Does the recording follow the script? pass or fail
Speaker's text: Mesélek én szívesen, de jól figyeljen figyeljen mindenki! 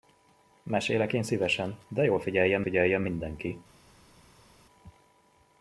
pass